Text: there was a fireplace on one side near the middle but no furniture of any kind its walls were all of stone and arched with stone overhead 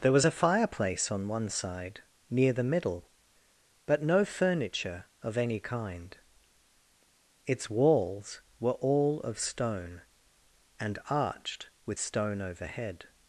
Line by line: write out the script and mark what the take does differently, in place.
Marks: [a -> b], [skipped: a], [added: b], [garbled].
there was a fireplace on one side near the middle but no furniture of any kind its walls were all of stone and arched with stone overhead